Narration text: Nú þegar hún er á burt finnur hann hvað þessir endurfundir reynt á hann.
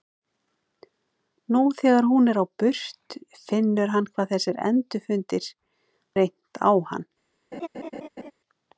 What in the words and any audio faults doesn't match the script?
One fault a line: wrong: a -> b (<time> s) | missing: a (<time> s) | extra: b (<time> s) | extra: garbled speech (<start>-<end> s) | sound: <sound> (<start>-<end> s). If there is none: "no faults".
sound: laugh (7.5-8.3 s)